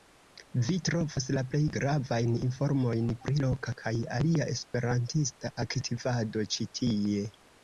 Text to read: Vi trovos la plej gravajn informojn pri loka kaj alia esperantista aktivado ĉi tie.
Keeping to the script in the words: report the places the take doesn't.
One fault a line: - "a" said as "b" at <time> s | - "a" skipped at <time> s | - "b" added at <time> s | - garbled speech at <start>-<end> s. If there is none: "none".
none